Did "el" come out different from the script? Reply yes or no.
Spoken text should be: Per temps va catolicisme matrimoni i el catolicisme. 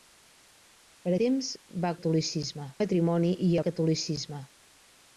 no